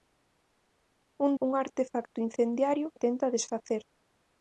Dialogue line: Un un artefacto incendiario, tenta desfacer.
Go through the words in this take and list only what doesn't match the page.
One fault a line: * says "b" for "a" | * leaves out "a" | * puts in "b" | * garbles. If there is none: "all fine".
all fine